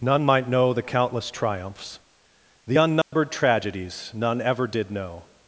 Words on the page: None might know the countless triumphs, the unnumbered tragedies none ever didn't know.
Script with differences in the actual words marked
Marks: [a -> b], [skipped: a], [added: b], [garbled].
None might know the countless triumphs, the unnumbered tragedies none ever [didn't -> did] know.